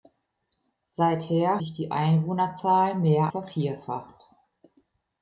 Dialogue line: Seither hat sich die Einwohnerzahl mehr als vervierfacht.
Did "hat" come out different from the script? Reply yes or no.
yes